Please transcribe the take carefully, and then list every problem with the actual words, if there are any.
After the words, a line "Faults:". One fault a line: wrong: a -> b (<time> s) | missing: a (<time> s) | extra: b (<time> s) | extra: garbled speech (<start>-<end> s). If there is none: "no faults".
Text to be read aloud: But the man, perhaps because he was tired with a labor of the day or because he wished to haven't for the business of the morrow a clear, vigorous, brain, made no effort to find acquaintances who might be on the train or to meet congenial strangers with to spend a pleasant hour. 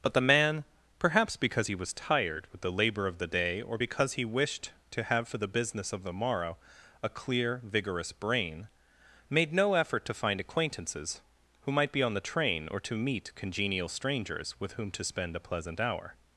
But the man, perhaps because he was tired with the labor of the day or because he wished to have for the business of the morrow a clear, vigorous, brain, made no effort to find acquaintances who might be on the train or to meet congenial strangers with whom to spend a pleasant hour.
Faults:
wrong: a -> the (2.6 s)
wrong: haven't -> have (5.0 s)
extra: whom (14.7 s)